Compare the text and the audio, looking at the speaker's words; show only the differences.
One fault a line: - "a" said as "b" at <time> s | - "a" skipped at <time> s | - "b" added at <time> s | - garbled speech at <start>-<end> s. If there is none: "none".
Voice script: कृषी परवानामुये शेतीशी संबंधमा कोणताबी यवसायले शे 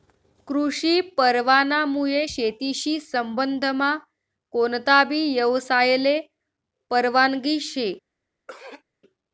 - "परवानगी" added at 6.9 s